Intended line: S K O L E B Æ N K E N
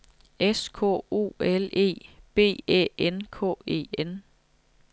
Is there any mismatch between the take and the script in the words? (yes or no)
no